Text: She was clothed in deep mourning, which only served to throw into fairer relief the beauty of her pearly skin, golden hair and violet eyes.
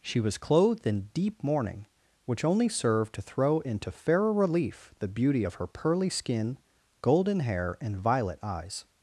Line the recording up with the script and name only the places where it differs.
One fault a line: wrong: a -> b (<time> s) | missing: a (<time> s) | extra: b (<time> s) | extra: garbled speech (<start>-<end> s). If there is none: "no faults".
no faults